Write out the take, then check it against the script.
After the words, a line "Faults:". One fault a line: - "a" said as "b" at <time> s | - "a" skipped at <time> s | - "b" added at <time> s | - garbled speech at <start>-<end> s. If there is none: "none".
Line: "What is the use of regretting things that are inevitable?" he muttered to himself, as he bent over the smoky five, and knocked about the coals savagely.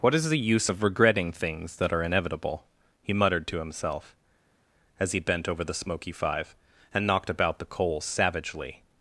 "What is the use of regretting things that are inevitable?" he muttered to himself, as he bent over the smoky five, and knocked about the coals savagely.
Faults:
none